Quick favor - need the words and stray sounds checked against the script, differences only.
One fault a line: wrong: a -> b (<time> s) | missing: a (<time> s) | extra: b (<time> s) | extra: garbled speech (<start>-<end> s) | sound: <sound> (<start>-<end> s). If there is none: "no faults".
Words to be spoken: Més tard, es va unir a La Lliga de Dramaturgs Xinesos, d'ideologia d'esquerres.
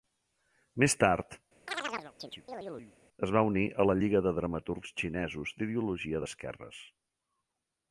sound: chirp (1.7-2.9 s)